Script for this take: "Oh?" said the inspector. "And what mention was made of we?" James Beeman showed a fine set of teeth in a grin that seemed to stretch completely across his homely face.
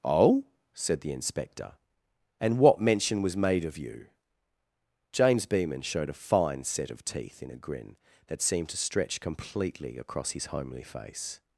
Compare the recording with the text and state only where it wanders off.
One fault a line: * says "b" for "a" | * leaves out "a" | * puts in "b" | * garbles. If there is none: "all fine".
* says "you" for "we"